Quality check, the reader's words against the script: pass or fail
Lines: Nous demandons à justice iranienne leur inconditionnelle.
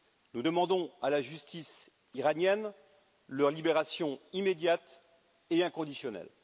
fail